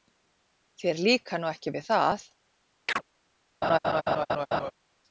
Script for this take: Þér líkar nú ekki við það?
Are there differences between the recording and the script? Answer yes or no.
no